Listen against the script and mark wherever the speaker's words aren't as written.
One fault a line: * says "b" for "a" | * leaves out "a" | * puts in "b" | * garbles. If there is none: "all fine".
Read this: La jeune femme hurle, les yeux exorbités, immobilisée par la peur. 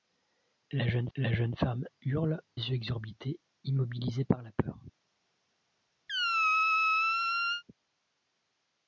* puts in "la jeune"
* leaves out "les"